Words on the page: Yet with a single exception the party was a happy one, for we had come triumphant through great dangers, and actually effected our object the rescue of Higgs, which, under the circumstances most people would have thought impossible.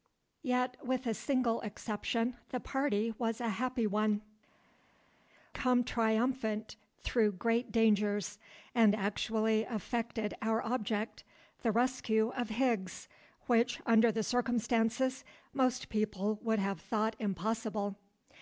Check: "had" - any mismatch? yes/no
yes